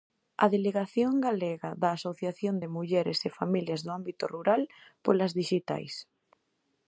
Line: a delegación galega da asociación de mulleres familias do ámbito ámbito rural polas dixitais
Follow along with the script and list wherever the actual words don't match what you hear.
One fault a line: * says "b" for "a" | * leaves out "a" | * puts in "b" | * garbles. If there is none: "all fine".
* puts in "e"
* leaves out "ámbito"